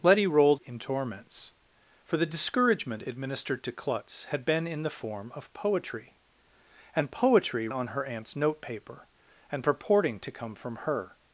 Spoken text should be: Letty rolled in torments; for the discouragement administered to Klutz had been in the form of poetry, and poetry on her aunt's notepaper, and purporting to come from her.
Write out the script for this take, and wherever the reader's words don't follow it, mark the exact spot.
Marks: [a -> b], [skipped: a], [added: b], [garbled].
Letty rolled in torments; for the discouragement administered to Klutz had been in the form of poetry, and poetry on her aunt's notepaper, and purporting to come from her.